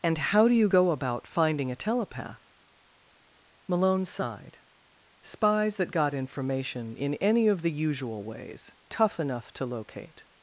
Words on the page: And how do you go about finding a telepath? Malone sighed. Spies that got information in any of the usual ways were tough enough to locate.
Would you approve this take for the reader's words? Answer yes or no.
no